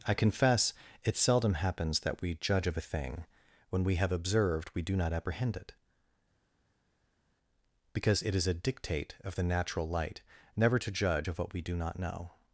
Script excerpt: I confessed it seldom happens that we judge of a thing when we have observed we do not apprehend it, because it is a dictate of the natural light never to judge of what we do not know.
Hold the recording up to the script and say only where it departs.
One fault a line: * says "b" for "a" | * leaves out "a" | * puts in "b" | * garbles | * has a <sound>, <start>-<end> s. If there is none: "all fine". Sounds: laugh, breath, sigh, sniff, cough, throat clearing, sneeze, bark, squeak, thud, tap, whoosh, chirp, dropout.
* says "confess" for "confessed"